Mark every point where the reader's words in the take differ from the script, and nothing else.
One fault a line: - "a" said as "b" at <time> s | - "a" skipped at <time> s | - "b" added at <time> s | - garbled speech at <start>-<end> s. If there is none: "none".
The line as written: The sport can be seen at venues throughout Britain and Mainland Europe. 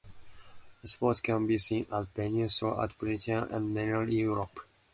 none